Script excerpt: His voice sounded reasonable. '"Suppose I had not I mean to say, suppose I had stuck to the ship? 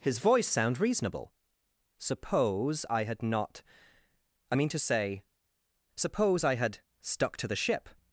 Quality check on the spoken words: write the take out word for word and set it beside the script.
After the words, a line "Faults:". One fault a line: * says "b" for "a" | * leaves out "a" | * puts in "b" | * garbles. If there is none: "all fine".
His voice sound reasonable. '"Suppose I had not I mean to say, suppose I had stuck to the ship?
Faults:
* says "sound" for "sounded"